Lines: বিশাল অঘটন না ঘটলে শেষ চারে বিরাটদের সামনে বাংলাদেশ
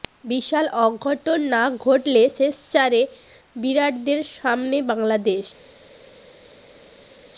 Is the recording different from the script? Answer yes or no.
no